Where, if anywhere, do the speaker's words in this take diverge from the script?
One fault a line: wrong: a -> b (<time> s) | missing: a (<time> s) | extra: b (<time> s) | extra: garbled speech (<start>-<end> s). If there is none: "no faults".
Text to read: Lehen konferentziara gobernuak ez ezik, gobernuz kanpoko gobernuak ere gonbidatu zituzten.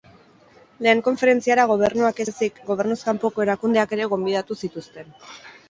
wrong: gobernuak -> erakundeak (3.5 s)